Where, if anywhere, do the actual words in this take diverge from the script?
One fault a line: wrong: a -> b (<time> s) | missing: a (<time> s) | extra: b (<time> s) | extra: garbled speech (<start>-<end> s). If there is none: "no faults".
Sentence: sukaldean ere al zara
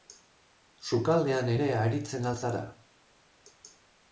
extra: aritzen (1.8 s)